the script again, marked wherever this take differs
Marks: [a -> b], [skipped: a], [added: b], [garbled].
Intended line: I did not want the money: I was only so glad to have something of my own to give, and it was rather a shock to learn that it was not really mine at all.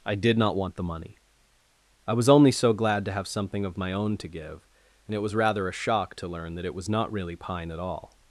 I did not want the money: I was only so glad to have something of my own to give, and it was rather a shock to learn that it was not really [mine -> pine] at all.